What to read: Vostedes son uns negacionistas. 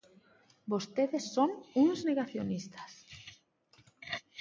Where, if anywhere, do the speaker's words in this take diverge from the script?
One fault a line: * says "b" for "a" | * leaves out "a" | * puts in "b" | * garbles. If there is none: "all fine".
all fine